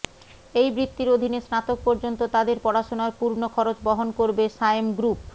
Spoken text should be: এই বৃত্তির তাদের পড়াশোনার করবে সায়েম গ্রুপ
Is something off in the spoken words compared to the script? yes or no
yes